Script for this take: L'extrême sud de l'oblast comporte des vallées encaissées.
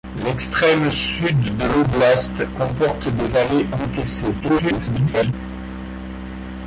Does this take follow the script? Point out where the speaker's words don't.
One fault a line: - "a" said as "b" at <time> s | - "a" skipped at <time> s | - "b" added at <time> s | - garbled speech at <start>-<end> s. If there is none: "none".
- garbled speech at 4.4-5.3 s